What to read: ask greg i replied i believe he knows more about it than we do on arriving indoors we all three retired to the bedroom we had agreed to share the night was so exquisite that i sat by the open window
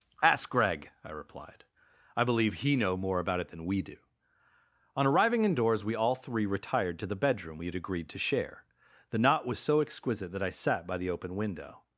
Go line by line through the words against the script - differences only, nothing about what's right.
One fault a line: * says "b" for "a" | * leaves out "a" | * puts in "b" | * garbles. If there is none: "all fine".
* says "know" for "knows"
* says "knot" for "night"